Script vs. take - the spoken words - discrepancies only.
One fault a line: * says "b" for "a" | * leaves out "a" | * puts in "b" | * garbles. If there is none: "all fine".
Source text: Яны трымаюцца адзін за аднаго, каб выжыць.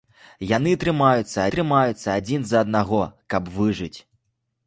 * puts in "трымаюцца"